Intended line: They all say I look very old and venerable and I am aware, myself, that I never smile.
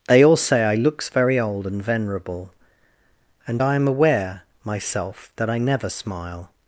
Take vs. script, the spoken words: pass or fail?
fail